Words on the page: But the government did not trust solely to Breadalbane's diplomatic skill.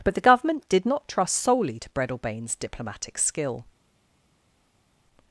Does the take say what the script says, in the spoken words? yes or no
yes